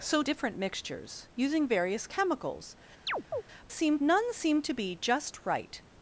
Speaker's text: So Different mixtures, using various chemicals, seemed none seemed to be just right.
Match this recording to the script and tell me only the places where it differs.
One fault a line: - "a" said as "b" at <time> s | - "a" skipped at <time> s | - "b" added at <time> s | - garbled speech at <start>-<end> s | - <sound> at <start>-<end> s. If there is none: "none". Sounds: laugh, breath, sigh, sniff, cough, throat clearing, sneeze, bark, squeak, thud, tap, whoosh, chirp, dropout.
- chirp at 3.1-3.4 s